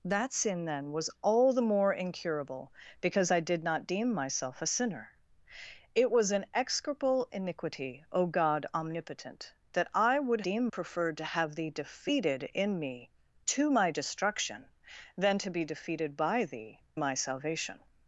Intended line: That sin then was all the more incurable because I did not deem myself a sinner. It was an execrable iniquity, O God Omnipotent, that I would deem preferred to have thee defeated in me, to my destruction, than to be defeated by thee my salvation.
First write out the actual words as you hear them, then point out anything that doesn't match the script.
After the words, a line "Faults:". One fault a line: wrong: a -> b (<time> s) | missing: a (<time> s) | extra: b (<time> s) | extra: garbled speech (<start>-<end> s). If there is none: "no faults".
That sin then was all the more incurable because I did not deem myself a sinner. It was an execrable iniquity, O God Omnipotent, that I would deem preferred to have thee defeated in me, to my destruction, than to be defeated by thee my salvation.
Faults:
no faults